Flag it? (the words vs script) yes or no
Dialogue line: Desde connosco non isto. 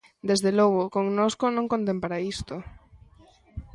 yes